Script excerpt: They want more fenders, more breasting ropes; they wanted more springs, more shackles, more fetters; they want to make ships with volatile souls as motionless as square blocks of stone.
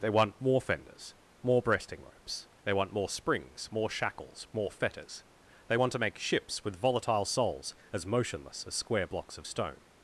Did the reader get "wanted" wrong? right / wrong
wrong